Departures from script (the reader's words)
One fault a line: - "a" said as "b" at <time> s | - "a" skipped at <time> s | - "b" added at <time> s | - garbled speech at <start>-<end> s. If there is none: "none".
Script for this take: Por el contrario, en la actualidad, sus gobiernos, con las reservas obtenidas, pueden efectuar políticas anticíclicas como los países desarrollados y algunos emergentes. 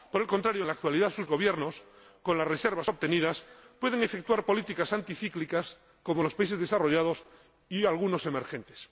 none